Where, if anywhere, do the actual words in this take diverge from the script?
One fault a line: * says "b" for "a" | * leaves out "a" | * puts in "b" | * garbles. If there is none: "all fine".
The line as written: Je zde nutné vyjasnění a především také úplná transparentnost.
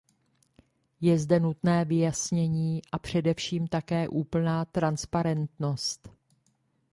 all fine